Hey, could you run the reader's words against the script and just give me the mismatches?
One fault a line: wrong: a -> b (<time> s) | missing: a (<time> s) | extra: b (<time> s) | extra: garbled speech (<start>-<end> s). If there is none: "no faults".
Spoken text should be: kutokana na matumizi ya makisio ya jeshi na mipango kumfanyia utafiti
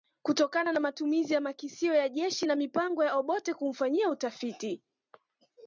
extra: ya Obote (3.0 s)